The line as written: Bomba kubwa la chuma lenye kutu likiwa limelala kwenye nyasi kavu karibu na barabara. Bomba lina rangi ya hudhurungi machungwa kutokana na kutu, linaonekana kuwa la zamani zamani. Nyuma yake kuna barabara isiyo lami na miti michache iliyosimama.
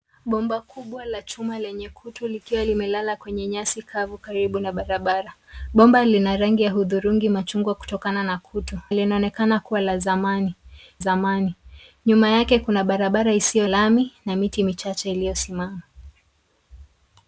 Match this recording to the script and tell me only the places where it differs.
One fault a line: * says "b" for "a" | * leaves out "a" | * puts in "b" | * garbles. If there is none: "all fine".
all fine